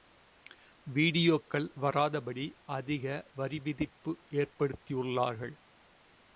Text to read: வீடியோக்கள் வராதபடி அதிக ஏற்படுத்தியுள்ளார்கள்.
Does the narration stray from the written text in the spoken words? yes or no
yes